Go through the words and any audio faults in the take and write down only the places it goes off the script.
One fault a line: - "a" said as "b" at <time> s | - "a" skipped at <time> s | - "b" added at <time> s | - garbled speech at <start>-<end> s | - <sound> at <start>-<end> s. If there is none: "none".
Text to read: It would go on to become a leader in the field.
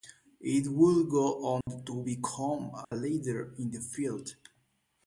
- dropout at 1.6-1.7 s
- dropout at 2.8-2.9 s